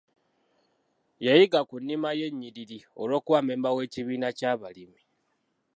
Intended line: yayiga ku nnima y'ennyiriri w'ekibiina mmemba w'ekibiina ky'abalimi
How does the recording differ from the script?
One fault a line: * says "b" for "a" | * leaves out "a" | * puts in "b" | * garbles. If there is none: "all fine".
* says "olw'okuba" for "w'ekibiina"